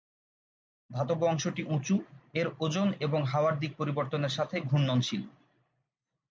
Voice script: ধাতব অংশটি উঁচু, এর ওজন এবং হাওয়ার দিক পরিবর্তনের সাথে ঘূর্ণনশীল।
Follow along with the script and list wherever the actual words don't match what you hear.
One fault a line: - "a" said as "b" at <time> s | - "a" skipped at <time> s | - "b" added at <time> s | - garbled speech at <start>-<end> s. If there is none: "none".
none